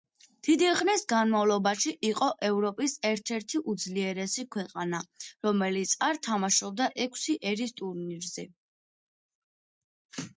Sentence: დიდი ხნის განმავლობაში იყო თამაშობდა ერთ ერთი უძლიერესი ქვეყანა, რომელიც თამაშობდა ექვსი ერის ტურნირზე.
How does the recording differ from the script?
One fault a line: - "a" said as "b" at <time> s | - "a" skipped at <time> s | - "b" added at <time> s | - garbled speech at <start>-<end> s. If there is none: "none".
- "თამაშობდა" said as "ევროპის" at 2.5 s
- "არ" added at 6.1 s